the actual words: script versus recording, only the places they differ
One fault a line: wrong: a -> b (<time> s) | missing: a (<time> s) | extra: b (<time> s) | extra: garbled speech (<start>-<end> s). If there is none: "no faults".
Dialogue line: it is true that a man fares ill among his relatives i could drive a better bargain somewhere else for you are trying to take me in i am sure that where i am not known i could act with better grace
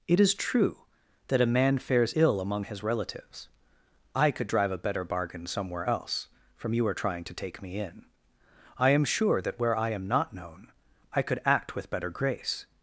wrong: for -> from (6.6 s)